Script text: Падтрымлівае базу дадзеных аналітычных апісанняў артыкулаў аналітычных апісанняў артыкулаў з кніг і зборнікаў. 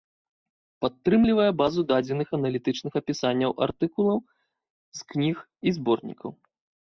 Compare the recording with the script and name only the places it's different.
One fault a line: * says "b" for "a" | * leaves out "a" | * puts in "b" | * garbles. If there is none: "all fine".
* leaves out "аналітычных апісанняў артыкулаў"